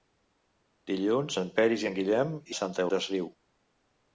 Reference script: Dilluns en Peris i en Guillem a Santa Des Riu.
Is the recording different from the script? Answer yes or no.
no